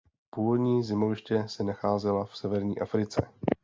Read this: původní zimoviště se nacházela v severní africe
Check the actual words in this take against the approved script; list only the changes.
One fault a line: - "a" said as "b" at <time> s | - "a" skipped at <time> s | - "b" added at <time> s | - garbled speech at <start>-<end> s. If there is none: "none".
none